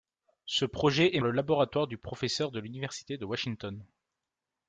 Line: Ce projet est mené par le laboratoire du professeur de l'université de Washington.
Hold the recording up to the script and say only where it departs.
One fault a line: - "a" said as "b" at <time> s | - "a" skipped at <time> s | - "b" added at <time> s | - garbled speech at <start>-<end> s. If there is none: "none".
- "mené par" skipped at 1.2 s